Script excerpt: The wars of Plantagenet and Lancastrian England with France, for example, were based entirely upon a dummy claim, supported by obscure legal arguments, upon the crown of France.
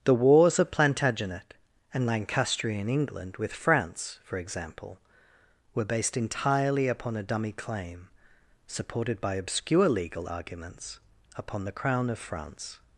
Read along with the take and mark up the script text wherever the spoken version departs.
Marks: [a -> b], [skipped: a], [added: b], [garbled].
The wars of Plantagenet and Lancastrian England with France, for example, were based entirely upon a dummy claim, supported by obscure legal arguments, upon the crown of France.